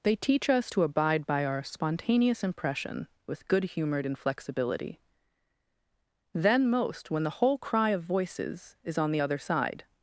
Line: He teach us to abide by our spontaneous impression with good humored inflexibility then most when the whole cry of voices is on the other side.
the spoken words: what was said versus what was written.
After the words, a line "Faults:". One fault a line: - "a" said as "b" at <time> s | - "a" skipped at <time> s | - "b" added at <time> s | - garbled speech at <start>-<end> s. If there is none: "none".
They teach us to abide by our spontaneous impression with good humored inflexibility then most when the whole cry of voices is on the other side.
Faults:
- "He" said as "They" at 0.0 s